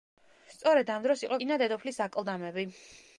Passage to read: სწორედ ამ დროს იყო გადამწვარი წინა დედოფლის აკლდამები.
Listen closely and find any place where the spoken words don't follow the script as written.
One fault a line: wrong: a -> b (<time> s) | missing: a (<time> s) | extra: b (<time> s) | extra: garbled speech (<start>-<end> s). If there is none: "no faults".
missing: გადამწვარი (1.4 s)